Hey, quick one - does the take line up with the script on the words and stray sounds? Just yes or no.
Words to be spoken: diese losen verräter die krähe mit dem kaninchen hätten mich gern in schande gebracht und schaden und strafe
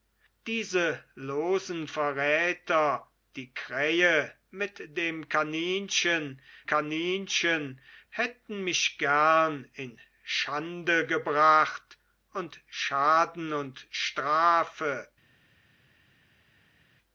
no